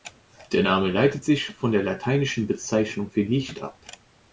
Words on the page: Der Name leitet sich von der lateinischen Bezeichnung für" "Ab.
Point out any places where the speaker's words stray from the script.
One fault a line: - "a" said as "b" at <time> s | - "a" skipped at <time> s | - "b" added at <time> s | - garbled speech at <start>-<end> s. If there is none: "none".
- "Licht" added at 3.2 s